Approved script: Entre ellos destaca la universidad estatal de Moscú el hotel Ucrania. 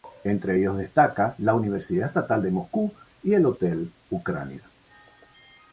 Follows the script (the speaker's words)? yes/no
no